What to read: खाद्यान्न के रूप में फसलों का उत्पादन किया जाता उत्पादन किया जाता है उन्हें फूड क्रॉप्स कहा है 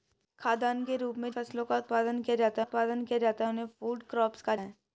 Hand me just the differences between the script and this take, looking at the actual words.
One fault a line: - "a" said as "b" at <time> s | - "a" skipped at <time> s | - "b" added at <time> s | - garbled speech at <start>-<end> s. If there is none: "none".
none